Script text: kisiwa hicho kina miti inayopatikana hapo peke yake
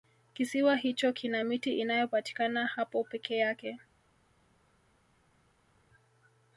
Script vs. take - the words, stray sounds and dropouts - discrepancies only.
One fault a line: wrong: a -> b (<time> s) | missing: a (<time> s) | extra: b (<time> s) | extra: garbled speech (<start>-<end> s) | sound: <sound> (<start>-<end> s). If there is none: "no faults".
no faults